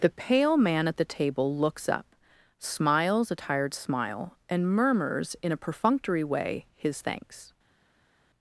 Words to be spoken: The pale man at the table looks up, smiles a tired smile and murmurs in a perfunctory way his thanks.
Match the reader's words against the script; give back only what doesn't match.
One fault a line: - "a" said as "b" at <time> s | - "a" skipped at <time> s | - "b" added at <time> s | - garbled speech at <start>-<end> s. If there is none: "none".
none